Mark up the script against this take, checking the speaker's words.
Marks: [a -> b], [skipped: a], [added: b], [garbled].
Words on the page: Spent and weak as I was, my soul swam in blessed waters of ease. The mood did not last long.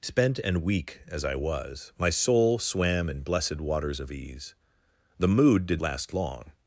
Spent and weak as I was, my soul swam in blessed waters of ease. The mood did [skipped: not] last long.